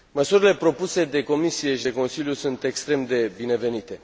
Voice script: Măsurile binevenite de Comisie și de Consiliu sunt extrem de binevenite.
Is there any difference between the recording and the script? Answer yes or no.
yes